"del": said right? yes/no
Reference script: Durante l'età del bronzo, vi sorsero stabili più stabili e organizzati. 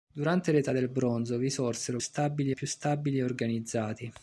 yes